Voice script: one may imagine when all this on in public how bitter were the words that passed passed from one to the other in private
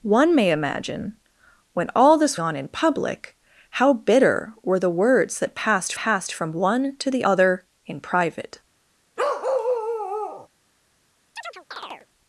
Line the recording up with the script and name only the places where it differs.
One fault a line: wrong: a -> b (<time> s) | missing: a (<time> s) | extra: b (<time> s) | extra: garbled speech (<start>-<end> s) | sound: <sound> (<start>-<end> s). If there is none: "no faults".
sound: bark (9.2-10.5 s)
sound: chirp (11.4-12.1 s)